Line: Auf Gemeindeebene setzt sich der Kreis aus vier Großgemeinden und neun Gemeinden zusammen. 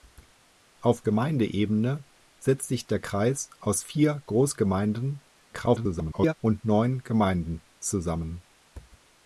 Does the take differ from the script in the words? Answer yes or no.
yes